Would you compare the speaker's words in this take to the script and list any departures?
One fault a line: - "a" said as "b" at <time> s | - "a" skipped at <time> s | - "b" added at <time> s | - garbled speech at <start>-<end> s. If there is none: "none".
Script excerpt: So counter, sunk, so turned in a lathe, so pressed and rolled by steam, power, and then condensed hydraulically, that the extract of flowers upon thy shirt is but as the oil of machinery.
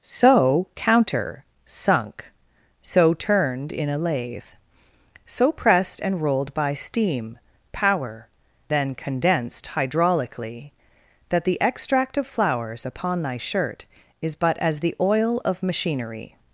- "and" skipped at 8.3 s